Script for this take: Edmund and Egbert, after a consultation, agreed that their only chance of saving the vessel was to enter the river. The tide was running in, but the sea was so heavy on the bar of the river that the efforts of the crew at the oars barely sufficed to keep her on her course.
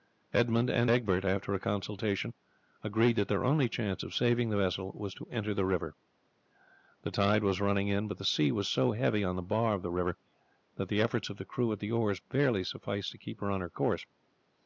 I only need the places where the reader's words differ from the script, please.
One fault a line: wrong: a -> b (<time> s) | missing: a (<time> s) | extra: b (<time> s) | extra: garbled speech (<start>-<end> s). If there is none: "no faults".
no faults